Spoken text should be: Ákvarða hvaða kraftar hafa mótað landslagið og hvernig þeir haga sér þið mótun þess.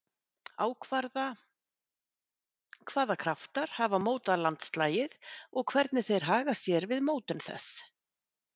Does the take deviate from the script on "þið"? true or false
true